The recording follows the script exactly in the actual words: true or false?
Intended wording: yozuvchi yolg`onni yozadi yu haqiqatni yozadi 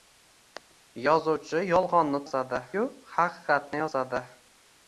true